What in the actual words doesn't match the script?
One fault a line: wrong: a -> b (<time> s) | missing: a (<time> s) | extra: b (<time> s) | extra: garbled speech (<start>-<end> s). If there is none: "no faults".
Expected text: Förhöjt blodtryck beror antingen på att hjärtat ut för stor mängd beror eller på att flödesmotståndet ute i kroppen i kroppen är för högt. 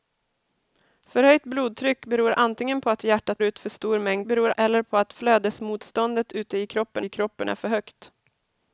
no faults